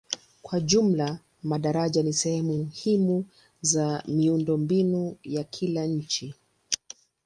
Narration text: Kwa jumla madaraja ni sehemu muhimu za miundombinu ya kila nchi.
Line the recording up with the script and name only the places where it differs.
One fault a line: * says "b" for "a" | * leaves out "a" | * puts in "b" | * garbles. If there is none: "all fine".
all fine